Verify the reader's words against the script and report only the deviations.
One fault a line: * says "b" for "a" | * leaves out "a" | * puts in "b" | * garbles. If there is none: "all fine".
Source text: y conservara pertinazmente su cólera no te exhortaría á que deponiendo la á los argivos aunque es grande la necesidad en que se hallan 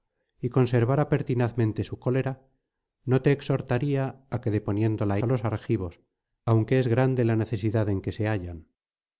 all fine